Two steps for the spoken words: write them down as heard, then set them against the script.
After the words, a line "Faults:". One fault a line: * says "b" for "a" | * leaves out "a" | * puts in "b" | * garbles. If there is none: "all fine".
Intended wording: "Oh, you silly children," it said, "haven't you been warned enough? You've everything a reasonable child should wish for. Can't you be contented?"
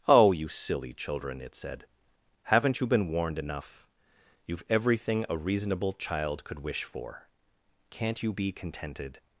"Oh, you silly children," it said, "haven't you been warned enough? You've everything a reasonable child could wish for. Can't you be contented?"
Faults:
* says "could" for "should"